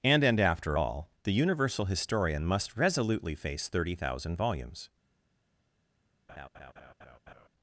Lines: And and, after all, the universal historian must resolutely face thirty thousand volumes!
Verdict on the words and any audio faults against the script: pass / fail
fail